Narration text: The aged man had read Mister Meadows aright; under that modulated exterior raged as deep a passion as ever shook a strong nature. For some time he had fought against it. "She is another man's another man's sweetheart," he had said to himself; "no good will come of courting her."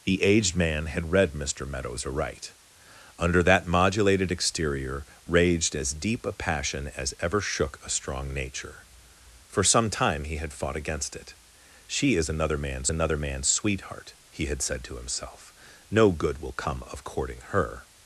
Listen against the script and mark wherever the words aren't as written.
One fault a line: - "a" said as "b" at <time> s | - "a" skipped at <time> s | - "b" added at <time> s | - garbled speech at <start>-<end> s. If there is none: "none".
none